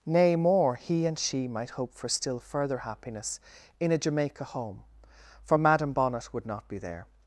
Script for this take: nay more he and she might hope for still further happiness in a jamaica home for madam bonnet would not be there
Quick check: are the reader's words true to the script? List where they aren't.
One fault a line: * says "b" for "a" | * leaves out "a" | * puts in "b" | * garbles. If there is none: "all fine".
all fine